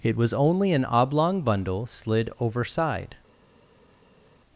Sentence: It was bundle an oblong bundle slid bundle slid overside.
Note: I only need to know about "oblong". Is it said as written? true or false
true